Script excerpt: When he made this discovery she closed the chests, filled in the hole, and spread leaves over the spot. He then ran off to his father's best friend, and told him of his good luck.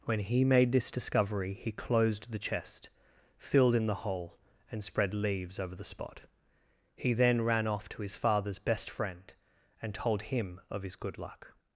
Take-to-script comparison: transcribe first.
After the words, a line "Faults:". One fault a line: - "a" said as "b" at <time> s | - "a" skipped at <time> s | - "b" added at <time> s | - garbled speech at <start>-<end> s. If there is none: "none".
When he made this discovery he closed the chest, filled in the hole, and spread leaves over the spot. He then ran off to his father's best friend, and told him of his good luck.
Faults:
- "she" said as "he" at 1.5 s
- "chests" said as "chest" at 2.4 s